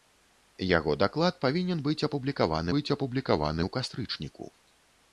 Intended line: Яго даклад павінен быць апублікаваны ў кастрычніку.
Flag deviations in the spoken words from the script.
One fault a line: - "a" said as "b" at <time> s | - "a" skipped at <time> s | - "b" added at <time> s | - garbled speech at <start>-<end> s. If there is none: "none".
- "быць апублікаваны" added at 2.8 s